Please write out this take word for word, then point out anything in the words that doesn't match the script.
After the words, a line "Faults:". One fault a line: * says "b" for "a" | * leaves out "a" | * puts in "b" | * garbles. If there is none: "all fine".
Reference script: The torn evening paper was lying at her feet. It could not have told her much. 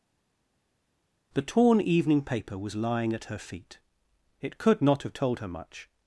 The torn evening paper was lying at her feet. It could not have told her much.
Faults:
all fine